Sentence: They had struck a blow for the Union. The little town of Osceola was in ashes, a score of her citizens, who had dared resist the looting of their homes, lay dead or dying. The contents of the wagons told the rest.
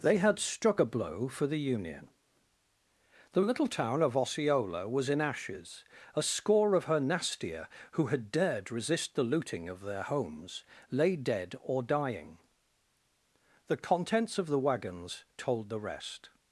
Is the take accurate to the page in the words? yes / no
no